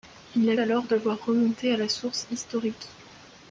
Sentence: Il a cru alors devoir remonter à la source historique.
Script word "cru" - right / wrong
wrong